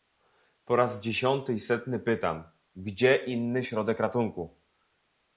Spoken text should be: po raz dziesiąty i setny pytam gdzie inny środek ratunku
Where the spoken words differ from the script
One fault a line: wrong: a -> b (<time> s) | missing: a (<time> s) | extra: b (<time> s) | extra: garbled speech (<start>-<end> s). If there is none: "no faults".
no faults